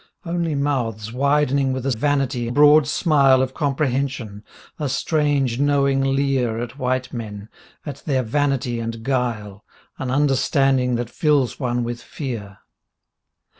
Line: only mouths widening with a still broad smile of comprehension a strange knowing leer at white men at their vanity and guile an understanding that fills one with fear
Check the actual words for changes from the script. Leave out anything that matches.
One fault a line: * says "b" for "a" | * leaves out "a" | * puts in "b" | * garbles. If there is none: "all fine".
* says "vanity" for "still"